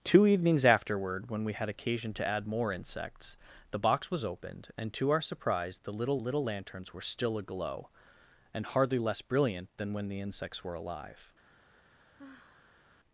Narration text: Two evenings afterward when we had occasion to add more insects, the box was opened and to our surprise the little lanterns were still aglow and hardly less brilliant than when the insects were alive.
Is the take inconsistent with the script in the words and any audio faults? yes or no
yes